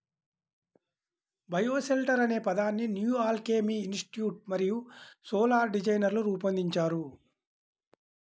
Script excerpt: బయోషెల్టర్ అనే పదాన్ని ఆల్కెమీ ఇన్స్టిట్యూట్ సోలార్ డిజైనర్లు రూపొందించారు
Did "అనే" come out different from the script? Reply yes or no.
no